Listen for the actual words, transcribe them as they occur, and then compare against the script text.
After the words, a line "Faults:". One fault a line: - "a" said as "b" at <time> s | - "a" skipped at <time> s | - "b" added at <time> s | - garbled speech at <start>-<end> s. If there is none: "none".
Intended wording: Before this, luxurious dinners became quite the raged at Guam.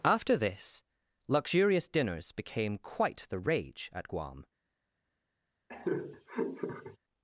After this, luxurious dinners became quite the rage at Guam.
Faults:
- "Before" said as "After" at 0.0 s
- "raged" said as "rage" at 3.4 s